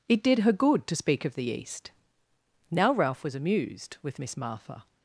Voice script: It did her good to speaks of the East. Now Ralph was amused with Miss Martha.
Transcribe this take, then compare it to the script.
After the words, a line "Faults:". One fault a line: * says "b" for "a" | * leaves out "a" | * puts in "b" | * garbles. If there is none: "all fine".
It did her good to speak of the East. Now Ralph was amused with Miss Martha.
Faults:
* says "speak" for "speaks"